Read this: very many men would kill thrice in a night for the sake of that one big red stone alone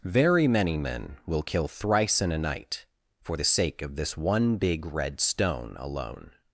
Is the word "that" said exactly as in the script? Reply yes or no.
no